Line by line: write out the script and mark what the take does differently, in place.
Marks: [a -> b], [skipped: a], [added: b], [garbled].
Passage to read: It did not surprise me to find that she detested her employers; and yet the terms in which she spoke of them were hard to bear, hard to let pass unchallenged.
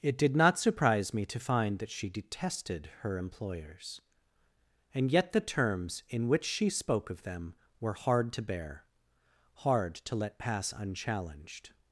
It did not surprise me to find that she detested her employers; and yet the terms in which she spoke of them were hard to bear, hard to let pass unchallenged.